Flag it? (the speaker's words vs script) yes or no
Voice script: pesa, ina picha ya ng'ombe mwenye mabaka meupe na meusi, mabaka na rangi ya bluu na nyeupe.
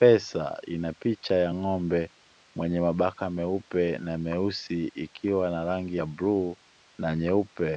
yes